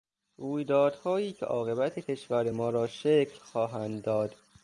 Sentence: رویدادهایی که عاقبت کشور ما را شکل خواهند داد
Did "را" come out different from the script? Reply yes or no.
no